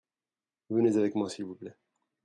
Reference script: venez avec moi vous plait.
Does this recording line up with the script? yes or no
no